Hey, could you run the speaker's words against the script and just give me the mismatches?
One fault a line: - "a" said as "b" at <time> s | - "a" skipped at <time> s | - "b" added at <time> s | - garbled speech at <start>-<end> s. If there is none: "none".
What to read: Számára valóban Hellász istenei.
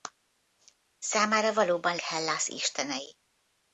none